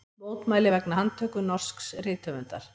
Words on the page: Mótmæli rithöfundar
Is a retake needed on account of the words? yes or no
yes